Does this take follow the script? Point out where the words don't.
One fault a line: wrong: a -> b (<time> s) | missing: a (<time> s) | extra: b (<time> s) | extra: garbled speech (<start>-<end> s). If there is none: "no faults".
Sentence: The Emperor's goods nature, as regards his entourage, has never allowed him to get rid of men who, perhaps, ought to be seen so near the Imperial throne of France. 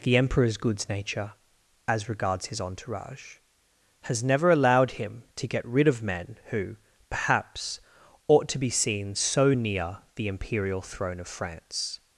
no faults